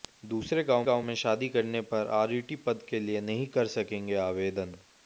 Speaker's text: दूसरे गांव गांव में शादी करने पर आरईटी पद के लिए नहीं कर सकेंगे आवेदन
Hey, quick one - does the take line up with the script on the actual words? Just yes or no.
yes